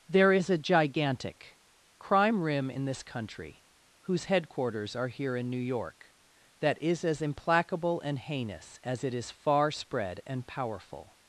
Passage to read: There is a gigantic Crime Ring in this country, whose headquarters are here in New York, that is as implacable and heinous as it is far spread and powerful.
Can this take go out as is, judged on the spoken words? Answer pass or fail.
fail